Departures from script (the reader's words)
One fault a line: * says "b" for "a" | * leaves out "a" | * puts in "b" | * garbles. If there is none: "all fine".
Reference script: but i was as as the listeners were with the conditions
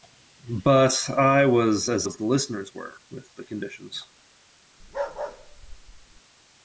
all fine